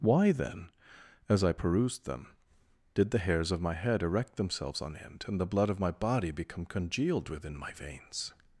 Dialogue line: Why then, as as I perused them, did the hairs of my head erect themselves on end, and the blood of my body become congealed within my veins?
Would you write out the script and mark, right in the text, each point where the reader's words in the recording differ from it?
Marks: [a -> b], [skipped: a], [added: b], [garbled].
Why then, as [skipped: as] I perused them, did the hairs of my head erect themselves on end, and the blood of my body become congealed within my veins?